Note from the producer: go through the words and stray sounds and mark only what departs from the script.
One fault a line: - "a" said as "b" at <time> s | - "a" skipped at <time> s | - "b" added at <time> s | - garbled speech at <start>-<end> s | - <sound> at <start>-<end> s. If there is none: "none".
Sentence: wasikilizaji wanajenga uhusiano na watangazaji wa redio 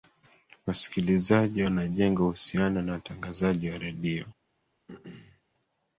- throat clearing at 4.9-5.4 s